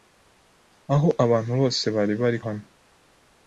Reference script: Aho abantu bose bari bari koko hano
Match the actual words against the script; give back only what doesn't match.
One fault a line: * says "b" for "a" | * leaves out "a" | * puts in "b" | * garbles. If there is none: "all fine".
* leaves out "koko"